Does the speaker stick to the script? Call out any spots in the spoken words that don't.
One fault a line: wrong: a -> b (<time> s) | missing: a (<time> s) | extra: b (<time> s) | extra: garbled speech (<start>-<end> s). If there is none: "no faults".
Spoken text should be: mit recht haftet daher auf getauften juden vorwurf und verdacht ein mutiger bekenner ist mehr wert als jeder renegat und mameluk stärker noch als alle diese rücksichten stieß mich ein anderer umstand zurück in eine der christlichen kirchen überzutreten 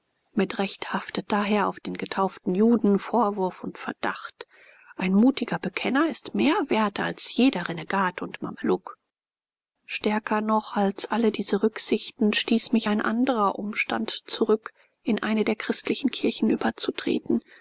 extra: den (1.8 s)